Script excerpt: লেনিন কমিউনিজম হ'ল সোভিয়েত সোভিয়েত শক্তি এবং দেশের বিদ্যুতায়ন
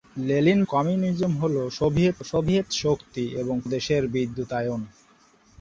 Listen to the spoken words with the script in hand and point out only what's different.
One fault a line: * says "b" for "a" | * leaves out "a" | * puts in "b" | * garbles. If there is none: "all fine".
all fine